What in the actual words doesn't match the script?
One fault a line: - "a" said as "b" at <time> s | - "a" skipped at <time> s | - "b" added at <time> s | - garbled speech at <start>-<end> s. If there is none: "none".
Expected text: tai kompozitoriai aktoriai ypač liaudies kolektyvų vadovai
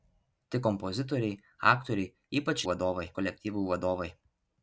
- "liaudies" said as "vadovai" at 2.7 s